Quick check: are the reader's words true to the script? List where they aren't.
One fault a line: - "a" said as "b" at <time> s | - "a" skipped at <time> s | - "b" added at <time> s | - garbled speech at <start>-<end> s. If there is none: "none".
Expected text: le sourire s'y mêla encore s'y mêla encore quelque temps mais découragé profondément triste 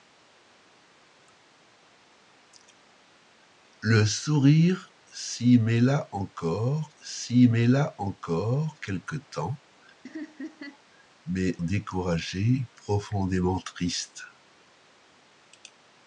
none